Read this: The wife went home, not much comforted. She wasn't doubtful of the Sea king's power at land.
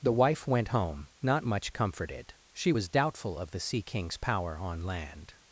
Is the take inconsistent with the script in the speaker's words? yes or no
yes